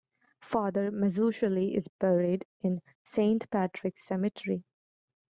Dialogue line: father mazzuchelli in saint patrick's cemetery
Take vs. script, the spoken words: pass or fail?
fail